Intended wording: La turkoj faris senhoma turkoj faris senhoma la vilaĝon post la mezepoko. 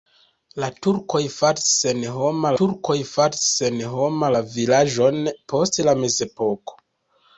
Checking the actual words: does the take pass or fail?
pass